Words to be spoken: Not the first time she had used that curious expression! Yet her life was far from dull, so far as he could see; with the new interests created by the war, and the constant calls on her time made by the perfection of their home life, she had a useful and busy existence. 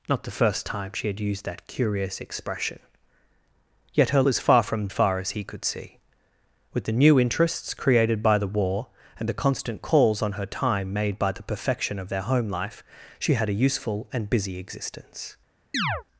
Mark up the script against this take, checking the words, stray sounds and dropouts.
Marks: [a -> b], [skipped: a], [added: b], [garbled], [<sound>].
Not the first time she had used that curious expression! Yet her [skipped: life] was far from [skipped: dull, so] far as he could see; with the new interests created by the war, and the constant calls on her time made by the perfection of their home life, she had a useful and busy existence. [chirp]